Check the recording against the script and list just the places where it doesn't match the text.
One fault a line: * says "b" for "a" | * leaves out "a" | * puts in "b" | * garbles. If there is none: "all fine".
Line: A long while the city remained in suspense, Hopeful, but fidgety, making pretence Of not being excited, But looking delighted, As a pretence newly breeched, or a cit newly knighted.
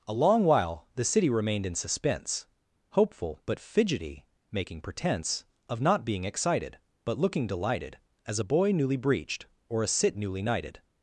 * says "boy" for "pretence"